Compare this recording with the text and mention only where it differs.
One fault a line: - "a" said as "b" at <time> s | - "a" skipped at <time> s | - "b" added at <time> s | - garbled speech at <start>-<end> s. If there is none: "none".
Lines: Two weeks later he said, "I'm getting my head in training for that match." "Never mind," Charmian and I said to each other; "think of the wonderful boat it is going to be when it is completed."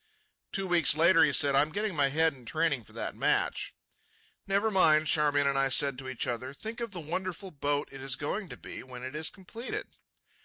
none